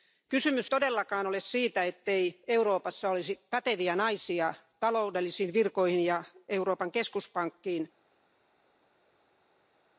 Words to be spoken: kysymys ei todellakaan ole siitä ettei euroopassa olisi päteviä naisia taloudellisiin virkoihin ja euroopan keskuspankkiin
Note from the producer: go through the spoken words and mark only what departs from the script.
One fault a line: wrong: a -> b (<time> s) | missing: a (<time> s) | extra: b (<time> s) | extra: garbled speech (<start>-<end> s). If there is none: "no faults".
missing: ei (0.7 s)